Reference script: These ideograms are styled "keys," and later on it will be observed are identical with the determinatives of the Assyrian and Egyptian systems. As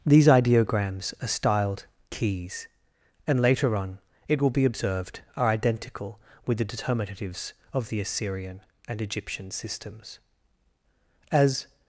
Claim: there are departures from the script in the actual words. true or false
false